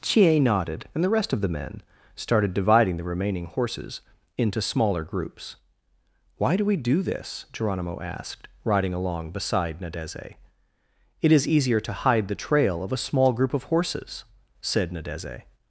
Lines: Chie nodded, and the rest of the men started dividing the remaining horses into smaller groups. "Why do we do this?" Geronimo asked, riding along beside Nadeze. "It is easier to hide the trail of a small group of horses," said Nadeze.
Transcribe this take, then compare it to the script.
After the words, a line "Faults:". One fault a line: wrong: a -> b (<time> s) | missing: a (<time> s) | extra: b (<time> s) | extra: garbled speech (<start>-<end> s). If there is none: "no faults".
Chie nodded, and the rest of the men started dividing the remaining horses into smaller groups. "Why do we do this?" Geronimo asked, riding along beside Nadeze. "It is easier to hide the trail of a small group of horses," said Nadeze.
Faults:
no faults